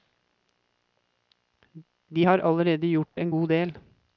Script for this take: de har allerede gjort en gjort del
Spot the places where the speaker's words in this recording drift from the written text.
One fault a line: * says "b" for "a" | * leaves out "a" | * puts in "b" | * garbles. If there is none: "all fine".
* says "god" for "gjort"